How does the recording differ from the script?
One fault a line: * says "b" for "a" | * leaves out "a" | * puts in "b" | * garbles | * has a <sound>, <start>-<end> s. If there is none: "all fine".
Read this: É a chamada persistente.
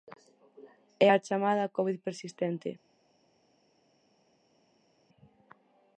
* puts in "covid"